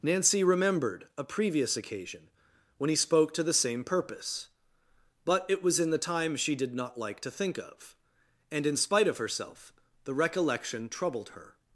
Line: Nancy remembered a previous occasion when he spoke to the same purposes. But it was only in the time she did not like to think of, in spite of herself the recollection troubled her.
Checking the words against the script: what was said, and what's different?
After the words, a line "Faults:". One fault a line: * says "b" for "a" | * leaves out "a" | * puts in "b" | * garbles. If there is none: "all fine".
Nancy remembered a previous occasion when he spoke to the same purpose. But it was in the time she did not like to think of, and in spite of herself the recollection troubled her.
Faults:
* says "purpose" for "purposes"
* leaves out "only"
* puts in "and"